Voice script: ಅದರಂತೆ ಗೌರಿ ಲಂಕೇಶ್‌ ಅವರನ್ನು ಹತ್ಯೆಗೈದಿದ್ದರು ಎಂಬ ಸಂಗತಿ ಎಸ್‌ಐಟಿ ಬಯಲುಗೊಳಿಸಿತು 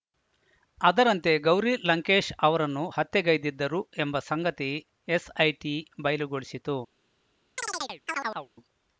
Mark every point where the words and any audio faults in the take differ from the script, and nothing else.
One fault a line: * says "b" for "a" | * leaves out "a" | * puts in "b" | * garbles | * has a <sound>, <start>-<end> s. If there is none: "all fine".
* has a chirp, 7.6-8.5 s